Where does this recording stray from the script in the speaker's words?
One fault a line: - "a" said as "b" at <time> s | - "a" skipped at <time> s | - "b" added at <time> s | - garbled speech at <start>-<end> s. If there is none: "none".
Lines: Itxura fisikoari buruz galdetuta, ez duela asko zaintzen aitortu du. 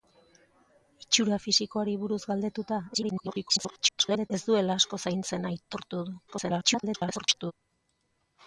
- garbled speech at 2.9-4.3 s
- garbled speech at 6.3-7.5 s